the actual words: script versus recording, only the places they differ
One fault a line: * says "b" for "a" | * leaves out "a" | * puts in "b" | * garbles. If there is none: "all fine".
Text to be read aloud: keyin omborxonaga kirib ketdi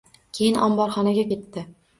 * leaves out "kirib"